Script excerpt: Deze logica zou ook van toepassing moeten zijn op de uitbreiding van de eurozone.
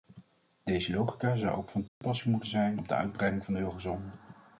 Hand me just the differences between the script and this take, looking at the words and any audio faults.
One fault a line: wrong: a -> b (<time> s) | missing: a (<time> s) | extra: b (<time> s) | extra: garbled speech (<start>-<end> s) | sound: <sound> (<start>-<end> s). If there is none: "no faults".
sound: dropout (1.9-2.0 s)